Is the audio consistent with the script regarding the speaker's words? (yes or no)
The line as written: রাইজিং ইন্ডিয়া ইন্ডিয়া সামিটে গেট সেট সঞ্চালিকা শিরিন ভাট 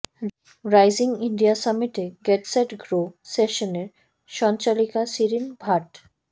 no